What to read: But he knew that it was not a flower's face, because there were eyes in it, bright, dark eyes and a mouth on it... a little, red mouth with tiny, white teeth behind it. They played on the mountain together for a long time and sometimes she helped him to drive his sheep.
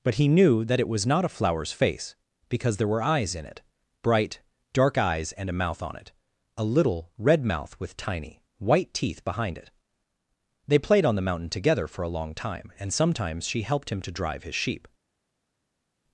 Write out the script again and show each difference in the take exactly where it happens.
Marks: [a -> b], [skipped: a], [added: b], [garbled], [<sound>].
But he knew that it was not a flower's face, because there were eyes in it, bright, dark eyes and a mouth on it... a little, red mouth with tiny, white teeth behind it. They played on the mountain together for a long time and sometimes she helped him to drive his sheep.